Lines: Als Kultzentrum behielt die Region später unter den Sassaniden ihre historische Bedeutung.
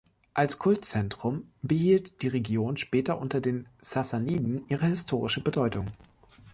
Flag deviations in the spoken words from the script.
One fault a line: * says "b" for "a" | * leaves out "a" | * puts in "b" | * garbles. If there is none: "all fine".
all fine